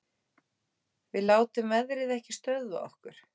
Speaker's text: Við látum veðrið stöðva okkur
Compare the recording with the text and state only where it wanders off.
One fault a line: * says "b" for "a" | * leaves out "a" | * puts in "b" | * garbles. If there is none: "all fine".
* puts in "ekki"